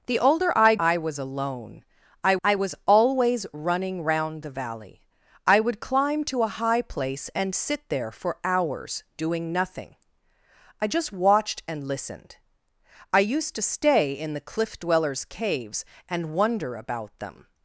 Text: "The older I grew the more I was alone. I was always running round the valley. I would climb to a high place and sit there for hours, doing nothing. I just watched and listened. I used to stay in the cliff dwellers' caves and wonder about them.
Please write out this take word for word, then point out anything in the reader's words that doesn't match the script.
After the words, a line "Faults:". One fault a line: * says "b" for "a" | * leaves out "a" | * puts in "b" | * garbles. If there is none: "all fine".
"The older I I was alone. I I was always running round the valley. I would climb to a high place and sit there for hours, doing nothing. I just watched and listened. I used to stay in the cliff dwellers' caves and wonder about them.
Faults:
* leaves out "grew the more"
* puts in "I"